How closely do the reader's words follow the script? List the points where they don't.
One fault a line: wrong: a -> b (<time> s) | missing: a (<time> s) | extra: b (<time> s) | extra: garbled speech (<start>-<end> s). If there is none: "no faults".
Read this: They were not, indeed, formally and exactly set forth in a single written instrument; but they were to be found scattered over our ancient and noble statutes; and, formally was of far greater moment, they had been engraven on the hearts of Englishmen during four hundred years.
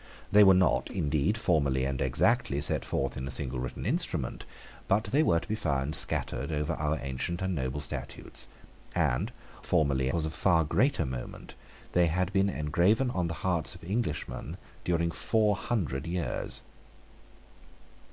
no faults